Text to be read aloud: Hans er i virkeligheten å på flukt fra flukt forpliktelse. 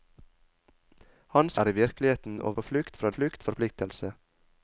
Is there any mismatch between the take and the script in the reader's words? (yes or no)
no